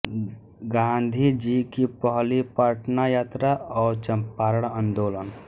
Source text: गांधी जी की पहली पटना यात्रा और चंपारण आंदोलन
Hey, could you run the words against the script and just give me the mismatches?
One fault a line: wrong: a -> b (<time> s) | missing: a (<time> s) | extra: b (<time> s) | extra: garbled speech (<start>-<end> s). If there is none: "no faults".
no faults